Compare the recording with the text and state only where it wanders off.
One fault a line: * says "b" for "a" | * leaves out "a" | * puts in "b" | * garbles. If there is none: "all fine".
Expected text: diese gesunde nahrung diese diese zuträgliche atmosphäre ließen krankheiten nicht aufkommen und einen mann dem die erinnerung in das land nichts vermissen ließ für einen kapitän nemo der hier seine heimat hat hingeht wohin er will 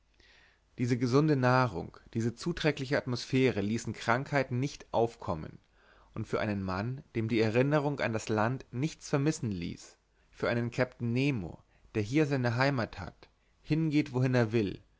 * leaves out "diese"
* puts in "für"
* says "an" for "in"